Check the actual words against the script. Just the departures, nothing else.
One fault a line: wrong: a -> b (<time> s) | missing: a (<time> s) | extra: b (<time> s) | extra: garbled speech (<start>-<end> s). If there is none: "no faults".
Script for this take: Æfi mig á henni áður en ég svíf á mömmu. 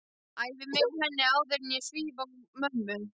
no faults